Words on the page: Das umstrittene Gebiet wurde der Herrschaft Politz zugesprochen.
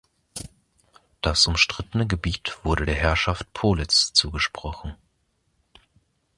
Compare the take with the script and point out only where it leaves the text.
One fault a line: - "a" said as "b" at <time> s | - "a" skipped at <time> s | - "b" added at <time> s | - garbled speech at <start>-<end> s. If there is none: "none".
none